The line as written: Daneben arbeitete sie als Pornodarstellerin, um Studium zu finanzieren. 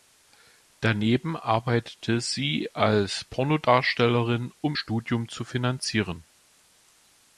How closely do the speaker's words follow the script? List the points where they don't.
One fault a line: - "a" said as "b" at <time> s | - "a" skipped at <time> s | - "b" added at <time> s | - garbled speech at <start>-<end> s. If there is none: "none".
none